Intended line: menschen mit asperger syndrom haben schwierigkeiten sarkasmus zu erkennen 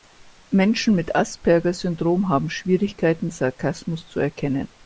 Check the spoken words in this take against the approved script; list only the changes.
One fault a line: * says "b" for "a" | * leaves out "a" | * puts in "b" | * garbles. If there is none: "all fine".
all fine